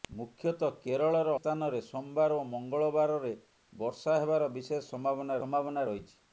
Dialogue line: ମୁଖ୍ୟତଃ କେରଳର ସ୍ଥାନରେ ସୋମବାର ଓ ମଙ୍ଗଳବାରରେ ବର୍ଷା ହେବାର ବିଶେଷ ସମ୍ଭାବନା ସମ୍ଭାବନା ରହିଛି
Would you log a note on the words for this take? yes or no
no